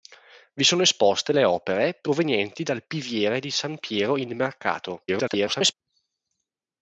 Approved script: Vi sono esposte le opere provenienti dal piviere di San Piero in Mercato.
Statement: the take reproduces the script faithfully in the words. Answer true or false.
false